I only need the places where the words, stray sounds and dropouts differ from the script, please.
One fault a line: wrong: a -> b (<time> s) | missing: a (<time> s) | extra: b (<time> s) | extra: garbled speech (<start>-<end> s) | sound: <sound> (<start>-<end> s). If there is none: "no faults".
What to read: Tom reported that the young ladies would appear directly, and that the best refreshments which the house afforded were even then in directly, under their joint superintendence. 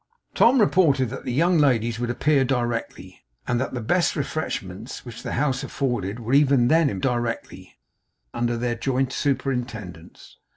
no faults